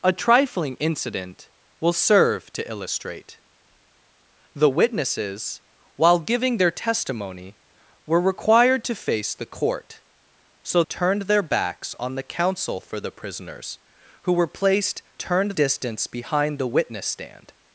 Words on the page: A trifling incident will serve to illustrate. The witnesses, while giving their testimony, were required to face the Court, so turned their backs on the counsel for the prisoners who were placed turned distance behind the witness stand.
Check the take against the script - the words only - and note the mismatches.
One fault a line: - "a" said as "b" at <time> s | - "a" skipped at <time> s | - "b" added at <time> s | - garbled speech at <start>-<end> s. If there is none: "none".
none